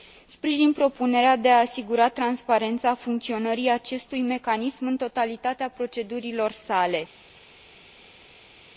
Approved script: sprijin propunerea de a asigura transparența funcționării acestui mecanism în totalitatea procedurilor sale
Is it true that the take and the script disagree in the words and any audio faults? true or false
false